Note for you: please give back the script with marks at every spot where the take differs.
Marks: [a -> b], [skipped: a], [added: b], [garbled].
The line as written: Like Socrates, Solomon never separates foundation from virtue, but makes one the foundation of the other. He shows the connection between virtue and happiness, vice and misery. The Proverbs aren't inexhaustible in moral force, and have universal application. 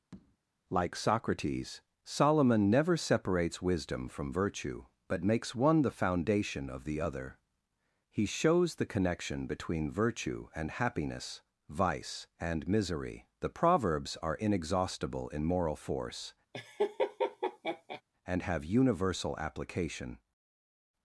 Like Socrates, Solomon never separates [foundation -> wisdom] from virtue, but makes one the foundation of the other. He shows the connection between virtue and happiness, vice and misery. The Proverbs [aren't -> are] inexhaustible in moral force, and have universal application.